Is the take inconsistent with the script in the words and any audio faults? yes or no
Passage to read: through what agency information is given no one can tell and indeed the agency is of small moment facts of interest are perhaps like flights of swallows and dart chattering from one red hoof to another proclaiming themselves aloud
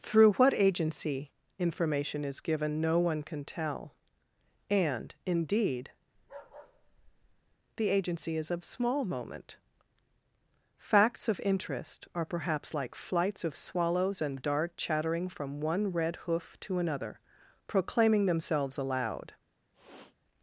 yes